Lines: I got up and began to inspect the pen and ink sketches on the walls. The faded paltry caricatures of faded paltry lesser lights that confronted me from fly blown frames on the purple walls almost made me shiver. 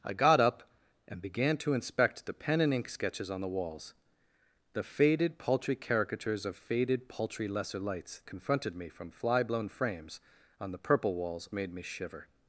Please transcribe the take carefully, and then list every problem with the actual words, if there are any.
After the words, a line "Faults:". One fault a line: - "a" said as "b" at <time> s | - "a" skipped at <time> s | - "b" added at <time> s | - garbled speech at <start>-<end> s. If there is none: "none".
I got up and began to inspect the pen and ink sketches on the walls. The faded paltry caricatures of faded paltry lesser lights confronted me from fly blown frames on the purple walls made me shiver.
Faults:
- "that" skipped at 8.2 s
- "almost" skipped at 11.5 s